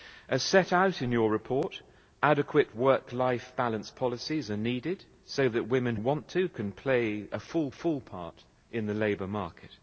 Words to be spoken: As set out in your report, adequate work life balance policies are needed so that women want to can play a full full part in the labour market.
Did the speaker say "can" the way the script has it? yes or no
yes